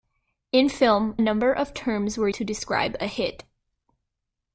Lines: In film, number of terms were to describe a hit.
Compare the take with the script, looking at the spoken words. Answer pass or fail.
pass